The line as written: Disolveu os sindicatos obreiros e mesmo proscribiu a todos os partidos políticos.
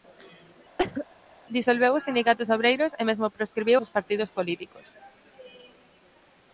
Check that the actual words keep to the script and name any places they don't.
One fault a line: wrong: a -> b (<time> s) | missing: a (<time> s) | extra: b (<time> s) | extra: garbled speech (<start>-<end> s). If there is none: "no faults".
missing: a todos (3.8 s)